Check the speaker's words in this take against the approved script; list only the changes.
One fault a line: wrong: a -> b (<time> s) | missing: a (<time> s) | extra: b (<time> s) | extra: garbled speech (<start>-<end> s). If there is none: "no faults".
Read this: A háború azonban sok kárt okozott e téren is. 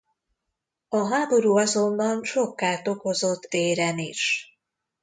missing: e (3.5 s)